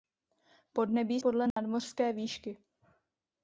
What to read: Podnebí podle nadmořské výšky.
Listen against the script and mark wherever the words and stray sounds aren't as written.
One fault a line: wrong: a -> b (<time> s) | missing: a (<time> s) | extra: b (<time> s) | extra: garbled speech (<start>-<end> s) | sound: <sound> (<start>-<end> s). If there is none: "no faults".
sound: dropout (1.5-1.6 s)